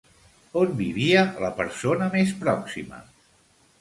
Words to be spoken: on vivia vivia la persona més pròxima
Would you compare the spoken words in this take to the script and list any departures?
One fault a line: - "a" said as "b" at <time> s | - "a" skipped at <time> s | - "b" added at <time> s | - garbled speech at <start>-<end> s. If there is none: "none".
- "vivia" skipped at 1.2 s